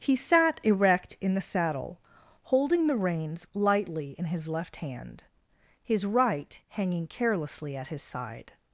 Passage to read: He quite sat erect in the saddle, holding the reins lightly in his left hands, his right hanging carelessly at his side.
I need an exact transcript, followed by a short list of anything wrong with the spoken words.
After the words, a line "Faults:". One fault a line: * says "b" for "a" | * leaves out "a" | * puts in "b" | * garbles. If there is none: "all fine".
He sat erect in the saddle, holding the reins lightly in his left hand, his right hanging carelessly at his side.
Faults:
* leaves out "quite"
* says "hand" for "hands"